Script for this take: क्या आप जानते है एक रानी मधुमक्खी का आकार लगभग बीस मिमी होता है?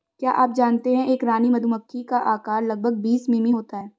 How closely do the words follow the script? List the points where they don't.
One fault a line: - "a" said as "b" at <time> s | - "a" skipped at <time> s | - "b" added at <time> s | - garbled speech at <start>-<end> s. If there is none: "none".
none